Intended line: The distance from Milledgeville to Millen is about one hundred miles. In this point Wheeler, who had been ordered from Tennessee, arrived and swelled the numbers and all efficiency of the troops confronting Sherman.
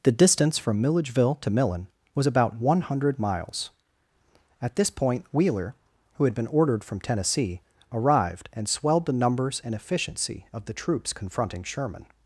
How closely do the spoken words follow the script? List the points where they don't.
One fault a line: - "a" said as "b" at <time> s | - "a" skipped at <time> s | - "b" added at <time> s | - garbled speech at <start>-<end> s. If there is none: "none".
- "is" said as "was" at 2.1 s
- "In" said as "At" at 4.6 s
- "all" skipped at 9.7 s